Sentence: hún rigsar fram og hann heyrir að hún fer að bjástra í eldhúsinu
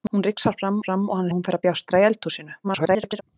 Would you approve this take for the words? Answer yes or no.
no